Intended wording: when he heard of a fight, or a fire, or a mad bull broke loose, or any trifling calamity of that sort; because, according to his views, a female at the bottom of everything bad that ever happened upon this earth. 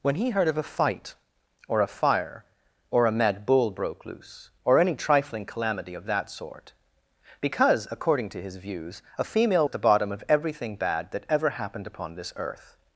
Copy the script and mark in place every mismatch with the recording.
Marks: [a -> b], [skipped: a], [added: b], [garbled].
when he heard of a fight, or a fire, or a mad bull broke loose, or any trifling calamity of that sort; because, according to his views, a female at the bottom of everything bad that ever happened upon this earth.